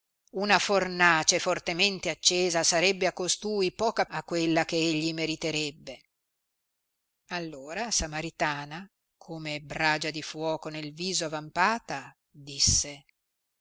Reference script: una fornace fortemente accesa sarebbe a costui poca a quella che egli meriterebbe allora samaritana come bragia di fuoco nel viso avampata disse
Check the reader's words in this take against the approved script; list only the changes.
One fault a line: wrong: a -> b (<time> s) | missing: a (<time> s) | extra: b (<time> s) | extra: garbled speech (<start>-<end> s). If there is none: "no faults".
no faults